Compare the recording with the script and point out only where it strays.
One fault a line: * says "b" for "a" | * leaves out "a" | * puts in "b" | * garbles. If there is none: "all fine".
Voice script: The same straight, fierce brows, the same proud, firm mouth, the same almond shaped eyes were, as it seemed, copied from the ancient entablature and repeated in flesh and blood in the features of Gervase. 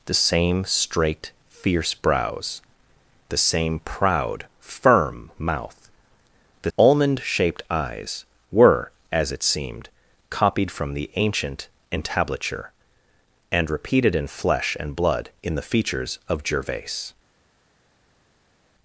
* leaves out "same"